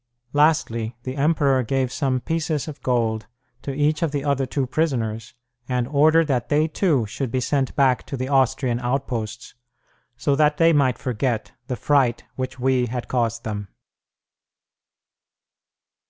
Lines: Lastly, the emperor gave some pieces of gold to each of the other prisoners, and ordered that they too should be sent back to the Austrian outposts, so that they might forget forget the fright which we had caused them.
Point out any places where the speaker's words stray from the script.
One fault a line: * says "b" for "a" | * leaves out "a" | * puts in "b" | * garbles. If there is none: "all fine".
* puts in "two"
* leaves out "forget"